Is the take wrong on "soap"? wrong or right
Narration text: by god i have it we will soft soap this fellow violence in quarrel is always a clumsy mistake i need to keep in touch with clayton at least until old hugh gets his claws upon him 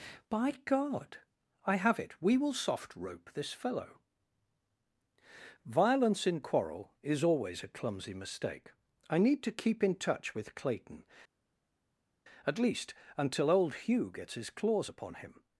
wrong